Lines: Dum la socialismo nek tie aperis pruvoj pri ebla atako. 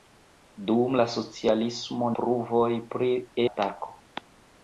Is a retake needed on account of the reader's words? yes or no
yes